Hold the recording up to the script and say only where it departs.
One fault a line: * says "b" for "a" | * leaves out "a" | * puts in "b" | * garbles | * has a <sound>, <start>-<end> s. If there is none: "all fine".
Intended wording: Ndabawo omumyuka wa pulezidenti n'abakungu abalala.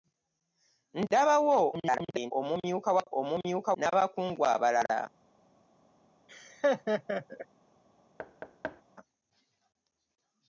* garbles
* says "omumyuka" for "pulezidenti"
* has a laugh, 6.3-7.5 s
* has a thud, 8.2-8.8 s